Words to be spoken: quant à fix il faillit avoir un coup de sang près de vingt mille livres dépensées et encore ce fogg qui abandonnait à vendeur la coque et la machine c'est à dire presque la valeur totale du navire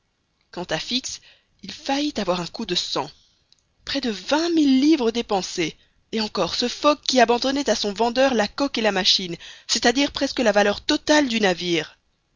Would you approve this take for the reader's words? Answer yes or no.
no